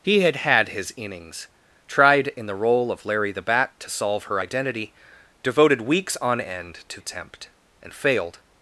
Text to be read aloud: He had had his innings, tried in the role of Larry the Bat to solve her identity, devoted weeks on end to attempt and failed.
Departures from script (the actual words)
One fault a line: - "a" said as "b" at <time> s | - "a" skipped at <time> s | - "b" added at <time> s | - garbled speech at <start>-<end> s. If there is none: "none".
none